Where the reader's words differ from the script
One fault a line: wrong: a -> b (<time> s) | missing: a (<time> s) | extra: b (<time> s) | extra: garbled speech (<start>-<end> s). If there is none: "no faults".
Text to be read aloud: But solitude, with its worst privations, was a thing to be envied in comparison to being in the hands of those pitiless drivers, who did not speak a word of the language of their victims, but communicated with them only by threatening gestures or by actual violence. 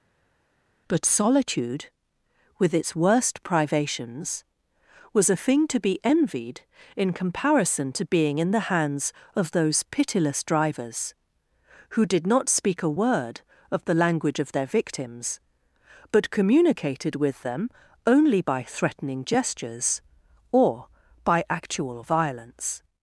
no faults